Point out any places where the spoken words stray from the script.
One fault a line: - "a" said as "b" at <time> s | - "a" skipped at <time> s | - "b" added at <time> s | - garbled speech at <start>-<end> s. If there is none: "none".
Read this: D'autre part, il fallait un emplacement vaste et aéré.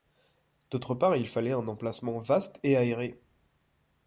none